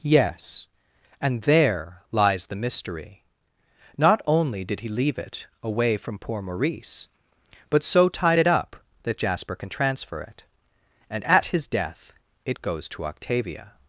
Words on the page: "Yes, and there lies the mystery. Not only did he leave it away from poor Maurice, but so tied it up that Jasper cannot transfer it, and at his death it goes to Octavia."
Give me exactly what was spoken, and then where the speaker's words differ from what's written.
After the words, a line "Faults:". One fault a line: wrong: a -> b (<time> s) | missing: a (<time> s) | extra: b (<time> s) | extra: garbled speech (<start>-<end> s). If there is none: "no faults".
"Yes, and there lies the mystery. Not only did he leave it away from poor Maurice, but so tied it up that Jasper can transfer it, and at his death it goes to Octavia."
Faults:
wrong: cannot -> can (9.5 s)